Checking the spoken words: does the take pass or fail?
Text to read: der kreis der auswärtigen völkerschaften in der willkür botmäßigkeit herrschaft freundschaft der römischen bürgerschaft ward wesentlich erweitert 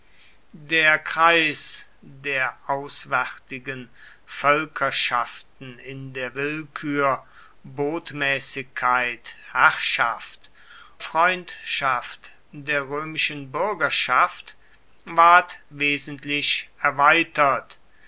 pass